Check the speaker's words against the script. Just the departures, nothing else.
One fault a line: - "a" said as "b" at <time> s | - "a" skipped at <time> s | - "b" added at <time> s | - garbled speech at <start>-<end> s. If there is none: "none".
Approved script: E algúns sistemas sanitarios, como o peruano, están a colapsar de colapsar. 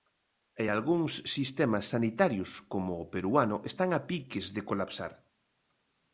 - "colapsar" said as "piques" at 4.1 s